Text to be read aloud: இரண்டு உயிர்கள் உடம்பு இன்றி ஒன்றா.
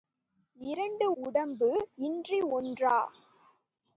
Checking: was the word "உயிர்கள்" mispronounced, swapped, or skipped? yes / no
yes